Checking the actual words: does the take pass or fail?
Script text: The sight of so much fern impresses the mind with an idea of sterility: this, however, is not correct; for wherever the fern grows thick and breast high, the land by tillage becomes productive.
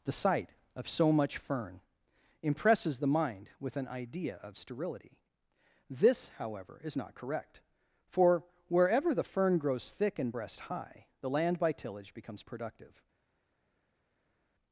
pass